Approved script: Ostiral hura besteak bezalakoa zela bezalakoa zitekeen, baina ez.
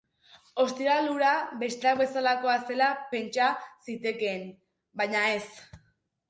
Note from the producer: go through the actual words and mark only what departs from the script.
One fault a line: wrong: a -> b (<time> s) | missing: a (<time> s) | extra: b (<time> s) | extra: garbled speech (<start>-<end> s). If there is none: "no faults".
wrong: bezalakoa -> pentsa (3.2 s)